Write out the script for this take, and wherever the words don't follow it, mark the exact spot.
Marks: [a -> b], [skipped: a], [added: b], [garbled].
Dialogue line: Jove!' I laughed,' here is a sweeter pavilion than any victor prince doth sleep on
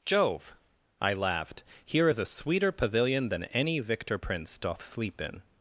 Jove!' I laughed,' here is a sweeter pavilion than any victor prince doth sleep [on -> in]